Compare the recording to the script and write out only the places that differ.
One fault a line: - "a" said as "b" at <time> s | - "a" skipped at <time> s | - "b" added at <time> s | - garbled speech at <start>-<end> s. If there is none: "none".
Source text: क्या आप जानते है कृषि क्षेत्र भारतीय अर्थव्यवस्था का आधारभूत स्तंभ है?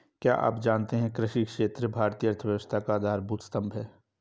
none